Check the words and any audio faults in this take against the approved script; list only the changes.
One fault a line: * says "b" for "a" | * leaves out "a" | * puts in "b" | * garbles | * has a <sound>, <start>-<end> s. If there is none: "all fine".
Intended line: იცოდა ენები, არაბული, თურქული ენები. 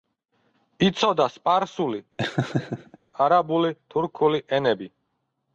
* says "სპარსული" for "ენები"
* has a laugh, 2.2-3.0 s